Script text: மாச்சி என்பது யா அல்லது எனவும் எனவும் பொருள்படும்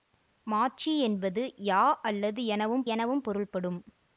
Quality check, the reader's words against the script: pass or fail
pass